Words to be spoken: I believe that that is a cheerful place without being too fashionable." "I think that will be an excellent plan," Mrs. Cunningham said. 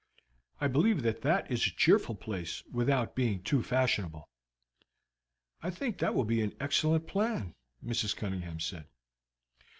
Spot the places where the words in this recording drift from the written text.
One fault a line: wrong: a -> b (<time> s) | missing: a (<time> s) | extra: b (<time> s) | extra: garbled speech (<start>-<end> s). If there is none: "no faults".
no faults